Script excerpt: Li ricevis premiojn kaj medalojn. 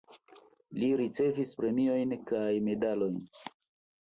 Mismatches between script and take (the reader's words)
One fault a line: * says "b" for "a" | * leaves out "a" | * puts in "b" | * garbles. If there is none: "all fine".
all fine